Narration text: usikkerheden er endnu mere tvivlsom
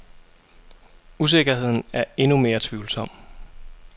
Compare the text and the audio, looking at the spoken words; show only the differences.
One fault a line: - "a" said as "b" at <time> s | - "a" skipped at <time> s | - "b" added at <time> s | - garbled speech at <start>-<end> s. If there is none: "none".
none